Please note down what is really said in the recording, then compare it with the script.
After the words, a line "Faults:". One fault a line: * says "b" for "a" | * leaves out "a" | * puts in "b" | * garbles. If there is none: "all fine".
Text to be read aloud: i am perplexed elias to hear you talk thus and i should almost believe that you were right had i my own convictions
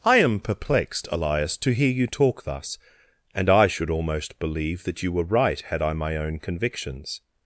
i am perplexed elias to hear you talk thus and i should almost believe that you were right had i my own convictions
Faults:
all fine